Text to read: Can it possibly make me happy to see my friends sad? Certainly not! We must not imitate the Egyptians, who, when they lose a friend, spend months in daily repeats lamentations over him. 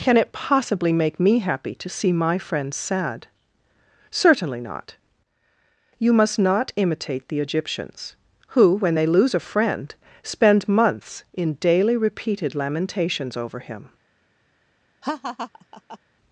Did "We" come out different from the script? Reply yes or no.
yes